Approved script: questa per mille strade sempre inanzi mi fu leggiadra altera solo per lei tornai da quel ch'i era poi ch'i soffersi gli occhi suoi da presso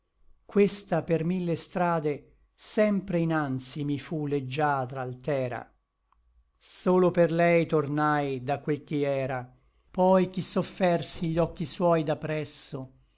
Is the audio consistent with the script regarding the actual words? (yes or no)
yes